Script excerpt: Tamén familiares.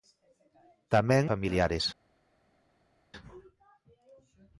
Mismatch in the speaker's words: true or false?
false